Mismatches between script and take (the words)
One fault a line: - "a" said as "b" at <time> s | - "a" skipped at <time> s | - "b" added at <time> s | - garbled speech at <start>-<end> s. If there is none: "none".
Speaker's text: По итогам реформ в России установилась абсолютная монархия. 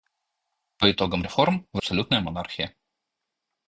- "России установилась" skipped at 1.8 s